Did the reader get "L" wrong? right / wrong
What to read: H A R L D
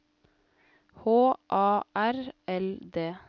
right